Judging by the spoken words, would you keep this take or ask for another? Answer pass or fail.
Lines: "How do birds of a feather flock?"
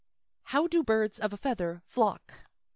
pass